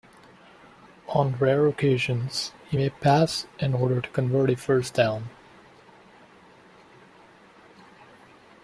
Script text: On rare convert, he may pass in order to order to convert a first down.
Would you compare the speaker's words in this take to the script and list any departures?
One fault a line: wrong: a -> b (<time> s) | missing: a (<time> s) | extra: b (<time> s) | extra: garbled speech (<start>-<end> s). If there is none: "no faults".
wrong: convert -> occasions (1.7 s)
missing: order to (4.1 s)